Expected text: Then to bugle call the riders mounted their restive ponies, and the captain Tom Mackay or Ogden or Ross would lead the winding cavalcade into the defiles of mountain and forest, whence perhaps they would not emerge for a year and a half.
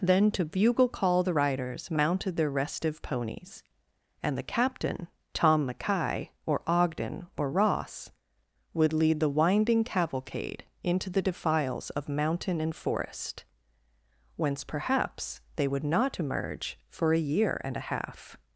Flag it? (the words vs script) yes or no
no